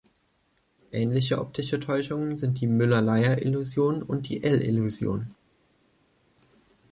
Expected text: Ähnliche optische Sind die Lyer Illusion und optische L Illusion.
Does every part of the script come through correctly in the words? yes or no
no